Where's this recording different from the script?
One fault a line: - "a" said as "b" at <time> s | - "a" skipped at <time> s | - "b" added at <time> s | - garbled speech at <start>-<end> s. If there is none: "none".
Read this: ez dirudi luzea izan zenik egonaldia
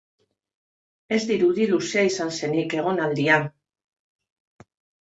none